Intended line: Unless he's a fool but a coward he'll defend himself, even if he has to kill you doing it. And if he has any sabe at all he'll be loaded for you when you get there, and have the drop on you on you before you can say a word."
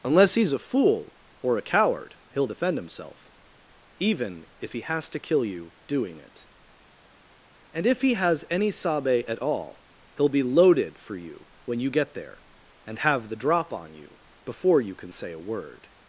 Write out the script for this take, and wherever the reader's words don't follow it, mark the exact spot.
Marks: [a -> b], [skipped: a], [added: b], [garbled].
Unless he's a fool [but -> or] a coward he'll defend himself, even if he has to kill you doing it. And if he has any sabe at all he'll be loaded for you when you get there, and have the drop on you [skipped: on you] before you can say a word."